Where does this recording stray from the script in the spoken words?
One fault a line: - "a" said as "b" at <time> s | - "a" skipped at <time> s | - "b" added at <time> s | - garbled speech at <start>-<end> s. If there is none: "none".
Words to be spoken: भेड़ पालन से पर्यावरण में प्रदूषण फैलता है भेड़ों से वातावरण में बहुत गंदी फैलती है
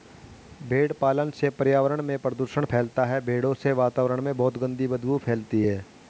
- "बदबू" added at 4.9 s